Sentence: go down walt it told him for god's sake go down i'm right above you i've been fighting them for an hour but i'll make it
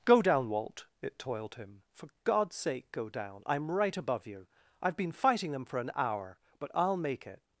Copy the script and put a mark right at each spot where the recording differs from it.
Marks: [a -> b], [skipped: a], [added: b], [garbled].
go down walt it [told -> toiled] him for god's sake go down i'm right above you i've been fighting them for an hour but i'll make it